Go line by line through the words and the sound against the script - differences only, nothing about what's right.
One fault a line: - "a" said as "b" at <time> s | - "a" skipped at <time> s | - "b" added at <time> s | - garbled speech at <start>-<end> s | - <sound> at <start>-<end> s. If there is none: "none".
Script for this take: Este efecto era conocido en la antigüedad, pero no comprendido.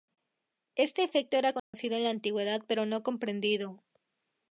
- dropout at 1.6-1.7 s